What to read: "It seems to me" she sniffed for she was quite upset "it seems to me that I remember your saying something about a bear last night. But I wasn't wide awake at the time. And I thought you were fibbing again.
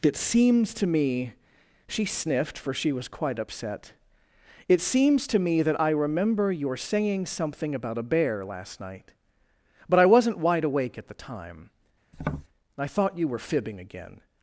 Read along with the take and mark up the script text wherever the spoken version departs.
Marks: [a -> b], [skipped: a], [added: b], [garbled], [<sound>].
"It seems to me" she sniffed for she was quite upset "it seems to me that I remember your saying something about a bear last night. But I wasn't wide awake at the time. [skipped: And] [tap] I thought you were fibbing again.